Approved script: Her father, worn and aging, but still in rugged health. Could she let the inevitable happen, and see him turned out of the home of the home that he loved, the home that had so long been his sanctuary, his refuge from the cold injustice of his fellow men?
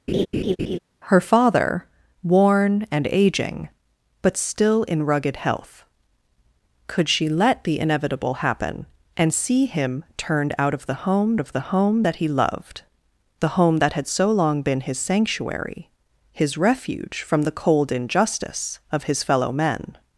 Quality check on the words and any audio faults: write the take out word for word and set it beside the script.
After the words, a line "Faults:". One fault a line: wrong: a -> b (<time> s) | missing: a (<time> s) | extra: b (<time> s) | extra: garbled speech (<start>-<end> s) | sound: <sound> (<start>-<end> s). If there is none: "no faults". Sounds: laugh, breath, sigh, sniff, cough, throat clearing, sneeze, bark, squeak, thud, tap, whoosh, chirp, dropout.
Her father, worn and aging, but still in rugged health. Could she let the inevitable happen, and see him turned out of the home of the home that he loved, the home that had so long been his sanctuary, his refuge from the cold injustice of his fellow men?
Faults:
sound: laugh (0.1-0.8 s)